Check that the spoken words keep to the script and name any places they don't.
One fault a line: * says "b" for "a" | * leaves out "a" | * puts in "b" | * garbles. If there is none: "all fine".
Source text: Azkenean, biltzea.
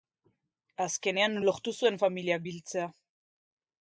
* puts in "lortu zuen familiak"